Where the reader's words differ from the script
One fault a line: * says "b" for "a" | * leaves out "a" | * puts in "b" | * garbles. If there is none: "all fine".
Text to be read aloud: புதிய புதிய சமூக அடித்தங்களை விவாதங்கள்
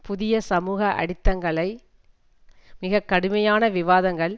* leaves out "புதிய"
* puts in "மிக கடுமையான"